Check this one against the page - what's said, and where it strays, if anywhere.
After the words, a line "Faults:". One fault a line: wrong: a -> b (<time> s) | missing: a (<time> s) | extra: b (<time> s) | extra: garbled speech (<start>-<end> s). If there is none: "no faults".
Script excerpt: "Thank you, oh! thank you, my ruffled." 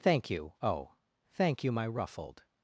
"Thank you, oh! thank you, my ruffled."
Faults:
no faults